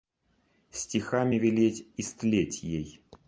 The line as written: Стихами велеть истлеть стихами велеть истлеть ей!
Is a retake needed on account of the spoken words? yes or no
yes